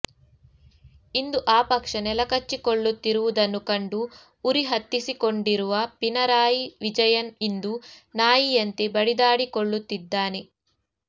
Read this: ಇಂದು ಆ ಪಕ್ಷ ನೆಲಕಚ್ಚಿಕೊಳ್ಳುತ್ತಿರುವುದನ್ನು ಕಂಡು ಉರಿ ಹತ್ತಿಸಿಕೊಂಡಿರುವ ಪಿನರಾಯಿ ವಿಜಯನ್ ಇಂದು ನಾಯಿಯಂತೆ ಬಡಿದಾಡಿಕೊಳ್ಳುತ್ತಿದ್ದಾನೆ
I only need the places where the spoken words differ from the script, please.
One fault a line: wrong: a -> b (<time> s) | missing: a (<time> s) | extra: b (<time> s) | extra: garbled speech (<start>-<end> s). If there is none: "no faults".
no faults